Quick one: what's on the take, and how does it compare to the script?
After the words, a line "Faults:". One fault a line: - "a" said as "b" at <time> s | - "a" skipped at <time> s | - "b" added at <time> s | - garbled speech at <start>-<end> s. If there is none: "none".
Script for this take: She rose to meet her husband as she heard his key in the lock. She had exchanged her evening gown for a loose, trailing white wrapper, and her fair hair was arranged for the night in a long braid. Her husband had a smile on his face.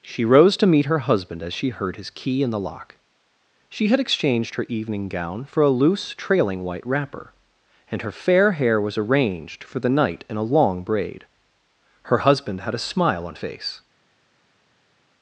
She rose to meet her husband as she heard his key in the lock. She had exchanged her evening gown for a loose, trailing white wrapper, and her fair hair was arranged for the night in a long braid. Her husband had a smile on face.
Faults:
- "his" skipped at 13.3 s